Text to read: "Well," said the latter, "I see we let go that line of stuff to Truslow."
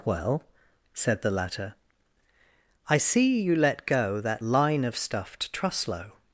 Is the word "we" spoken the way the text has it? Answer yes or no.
no